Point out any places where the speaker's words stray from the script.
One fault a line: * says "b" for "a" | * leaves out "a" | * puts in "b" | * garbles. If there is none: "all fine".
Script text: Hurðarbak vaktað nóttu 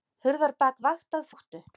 all fine